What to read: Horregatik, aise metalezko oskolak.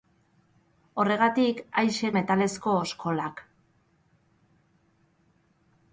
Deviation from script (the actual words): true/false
false